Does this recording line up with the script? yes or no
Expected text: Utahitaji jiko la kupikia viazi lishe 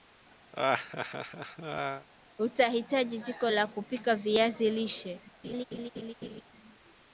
yes